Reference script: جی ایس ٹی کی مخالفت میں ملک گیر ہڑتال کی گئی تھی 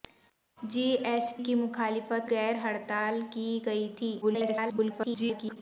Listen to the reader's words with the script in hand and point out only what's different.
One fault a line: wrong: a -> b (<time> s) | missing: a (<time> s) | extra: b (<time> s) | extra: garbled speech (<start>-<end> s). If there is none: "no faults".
missing: ٹی (1.3 s)
missing: میں ملک (2.3 s)
extra: garbled speech (4.2-5.6 s)